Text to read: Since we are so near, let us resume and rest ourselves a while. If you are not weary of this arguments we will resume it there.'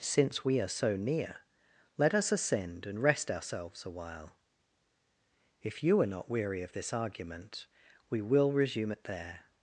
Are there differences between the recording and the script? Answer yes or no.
yes